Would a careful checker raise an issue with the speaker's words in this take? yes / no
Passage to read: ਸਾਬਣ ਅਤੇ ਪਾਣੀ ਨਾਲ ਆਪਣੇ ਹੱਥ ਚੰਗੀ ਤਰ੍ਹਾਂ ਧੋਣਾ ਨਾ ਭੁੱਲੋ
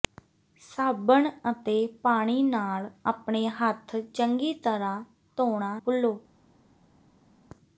yes